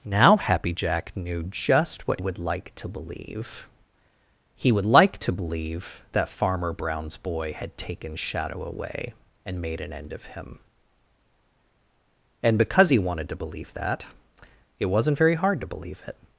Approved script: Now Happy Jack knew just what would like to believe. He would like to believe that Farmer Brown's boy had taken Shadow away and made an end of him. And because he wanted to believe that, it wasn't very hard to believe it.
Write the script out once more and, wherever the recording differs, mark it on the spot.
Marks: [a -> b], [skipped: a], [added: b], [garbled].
Now Happy Jack knew just what would like to believe. He would like to believe that Farmer Brown's boy had taken Shadow away and made an end of him. And because he wanted to believe that, it wasn't very hard to believe it.